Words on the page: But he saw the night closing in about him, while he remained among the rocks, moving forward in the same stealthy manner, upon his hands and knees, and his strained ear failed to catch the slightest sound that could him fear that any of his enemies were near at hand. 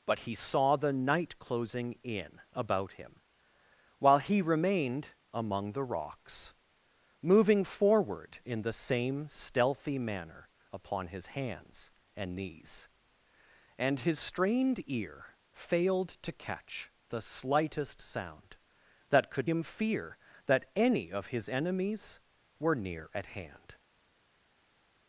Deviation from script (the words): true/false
false